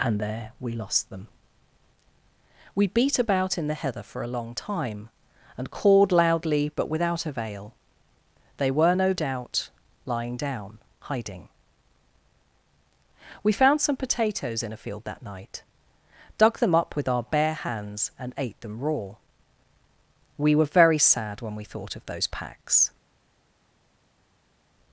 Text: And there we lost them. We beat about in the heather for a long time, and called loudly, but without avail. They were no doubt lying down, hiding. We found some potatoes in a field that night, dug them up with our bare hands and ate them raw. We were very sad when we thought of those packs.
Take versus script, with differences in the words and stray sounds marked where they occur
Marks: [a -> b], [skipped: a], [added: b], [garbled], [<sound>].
And there we lost them. We beat about in the heather for a long time, and called loudly, but without avail. They were no doubt lying down, hiding. We found some potatoes in a field that night, dug them up with our bare hands and ate them raw. We were very sad when we thought of those packs.